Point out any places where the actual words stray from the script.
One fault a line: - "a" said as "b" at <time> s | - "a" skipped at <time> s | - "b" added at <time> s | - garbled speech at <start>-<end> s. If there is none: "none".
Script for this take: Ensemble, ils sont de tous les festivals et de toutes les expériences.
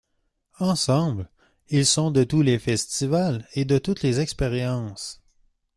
none